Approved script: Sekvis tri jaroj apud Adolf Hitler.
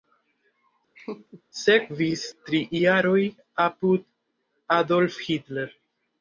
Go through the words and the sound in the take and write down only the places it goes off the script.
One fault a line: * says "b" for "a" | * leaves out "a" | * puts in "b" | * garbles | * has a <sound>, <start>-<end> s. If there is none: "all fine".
* has a laugh, 0.9-1.4 s